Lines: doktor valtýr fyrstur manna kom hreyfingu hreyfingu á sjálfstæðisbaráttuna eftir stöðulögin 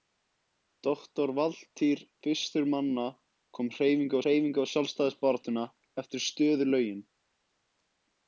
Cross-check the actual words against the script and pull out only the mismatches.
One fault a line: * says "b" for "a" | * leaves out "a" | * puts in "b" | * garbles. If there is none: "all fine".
all fine